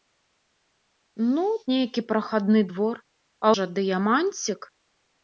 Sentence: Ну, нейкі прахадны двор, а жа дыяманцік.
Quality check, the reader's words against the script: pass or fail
pass